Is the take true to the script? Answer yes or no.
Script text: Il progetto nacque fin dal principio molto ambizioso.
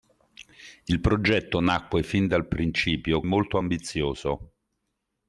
yes